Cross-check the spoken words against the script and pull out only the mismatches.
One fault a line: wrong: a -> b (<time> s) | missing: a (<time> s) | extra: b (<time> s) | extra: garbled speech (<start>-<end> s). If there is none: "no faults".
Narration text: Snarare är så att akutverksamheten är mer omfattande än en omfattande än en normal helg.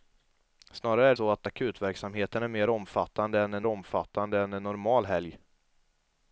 no faults